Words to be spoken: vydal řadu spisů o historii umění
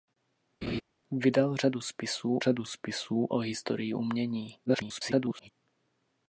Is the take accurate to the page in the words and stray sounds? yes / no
no